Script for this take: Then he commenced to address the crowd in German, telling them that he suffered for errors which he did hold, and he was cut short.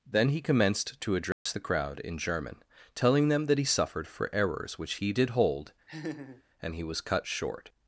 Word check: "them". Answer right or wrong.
right